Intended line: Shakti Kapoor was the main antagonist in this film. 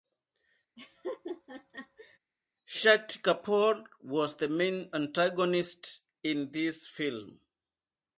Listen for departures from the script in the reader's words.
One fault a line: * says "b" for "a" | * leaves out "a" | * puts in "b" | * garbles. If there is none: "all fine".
all fine